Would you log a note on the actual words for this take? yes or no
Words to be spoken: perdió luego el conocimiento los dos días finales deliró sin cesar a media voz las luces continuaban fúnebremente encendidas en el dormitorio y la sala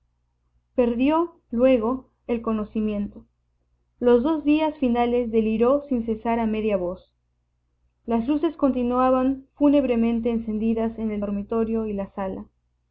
no